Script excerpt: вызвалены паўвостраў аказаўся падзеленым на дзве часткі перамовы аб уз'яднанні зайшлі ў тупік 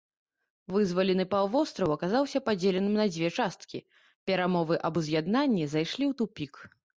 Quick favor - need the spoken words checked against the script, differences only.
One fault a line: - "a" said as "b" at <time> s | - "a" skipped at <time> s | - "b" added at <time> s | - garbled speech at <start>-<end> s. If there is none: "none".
none